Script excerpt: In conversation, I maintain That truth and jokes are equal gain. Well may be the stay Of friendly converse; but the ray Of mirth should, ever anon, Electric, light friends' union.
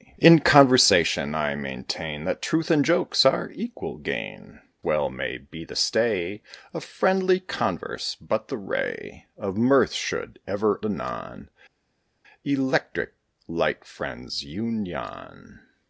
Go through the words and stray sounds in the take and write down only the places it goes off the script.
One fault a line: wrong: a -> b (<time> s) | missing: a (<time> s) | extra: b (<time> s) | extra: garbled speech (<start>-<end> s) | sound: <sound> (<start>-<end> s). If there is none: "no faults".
no faults